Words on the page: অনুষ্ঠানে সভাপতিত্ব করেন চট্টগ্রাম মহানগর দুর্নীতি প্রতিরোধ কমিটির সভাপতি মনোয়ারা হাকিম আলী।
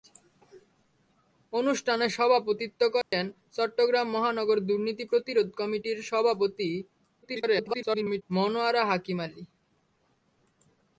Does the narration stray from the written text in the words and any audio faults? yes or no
yes